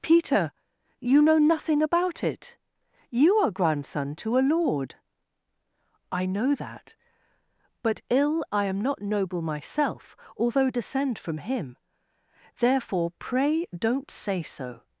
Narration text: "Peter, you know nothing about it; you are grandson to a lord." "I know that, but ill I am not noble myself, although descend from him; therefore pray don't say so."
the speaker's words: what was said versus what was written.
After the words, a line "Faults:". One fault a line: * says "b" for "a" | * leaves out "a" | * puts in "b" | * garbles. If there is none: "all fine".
"Peter, you know nothing about it; you are grandson to a lord." "I know that, but ill I am not noble myself, although descend from him; therefore pray don't say so."
Faults:
all fine